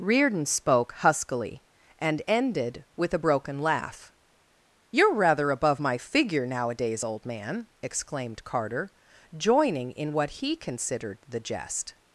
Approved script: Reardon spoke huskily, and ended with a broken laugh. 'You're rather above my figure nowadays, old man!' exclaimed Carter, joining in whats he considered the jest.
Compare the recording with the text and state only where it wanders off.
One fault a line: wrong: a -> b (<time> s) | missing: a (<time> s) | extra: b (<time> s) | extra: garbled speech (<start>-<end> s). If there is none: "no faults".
wrong: whats -> what (10.1 s)